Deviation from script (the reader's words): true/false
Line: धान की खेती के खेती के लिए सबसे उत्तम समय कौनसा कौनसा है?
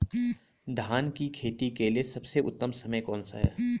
true